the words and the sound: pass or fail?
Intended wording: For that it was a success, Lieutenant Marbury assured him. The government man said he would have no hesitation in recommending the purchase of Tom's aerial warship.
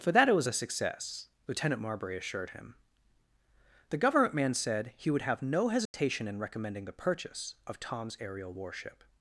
fail